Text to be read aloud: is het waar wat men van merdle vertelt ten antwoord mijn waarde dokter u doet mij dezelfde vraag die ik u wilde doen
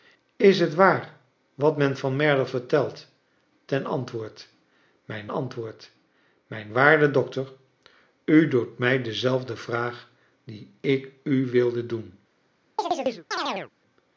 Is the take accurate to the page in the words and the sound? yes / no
no